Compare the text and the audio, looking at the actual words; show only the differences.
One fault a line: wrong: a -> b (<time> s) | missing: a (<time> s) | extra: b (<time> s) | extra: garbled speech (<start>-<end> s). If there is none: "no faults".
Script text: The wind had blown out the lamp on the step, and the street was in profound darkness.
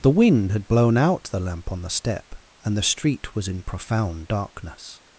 no faults